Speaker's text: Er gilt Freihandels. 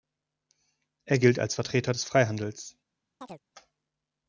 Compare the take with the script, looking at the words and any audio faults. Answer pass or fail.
fail